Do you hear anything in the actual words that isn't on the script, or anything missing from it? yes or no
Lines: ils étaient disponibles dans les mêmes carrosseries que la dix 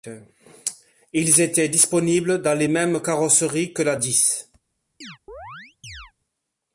no